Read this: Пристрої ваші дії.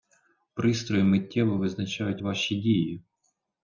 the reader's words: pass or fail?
fail